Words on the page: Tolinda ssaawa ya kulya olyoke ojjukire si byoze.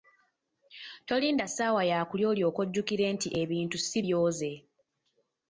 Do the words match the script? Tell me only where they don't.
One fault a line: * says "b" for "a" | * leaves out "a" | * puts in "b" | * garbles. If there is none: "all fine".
* puts in "nti ebintu"